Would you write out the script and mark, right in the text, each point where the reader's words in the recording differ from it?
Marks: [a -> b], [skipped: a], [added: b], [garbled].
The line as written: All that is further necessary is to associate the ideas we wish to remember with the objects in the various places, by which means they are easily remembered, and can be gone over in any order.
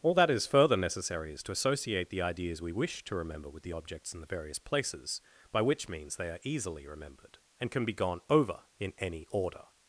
All that is further necessary is to associate the ideas we wish to remember with the objects in the various places, by which means they are easily remembered, and can be gone over in any order.